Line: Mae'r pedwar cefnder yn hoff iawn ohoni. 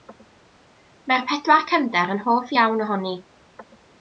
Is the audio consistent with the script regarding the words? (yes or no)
yes